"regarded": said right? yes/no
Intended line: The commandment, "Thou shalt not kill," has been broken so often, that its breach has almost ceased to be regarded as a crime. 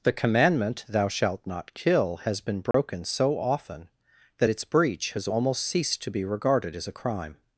yes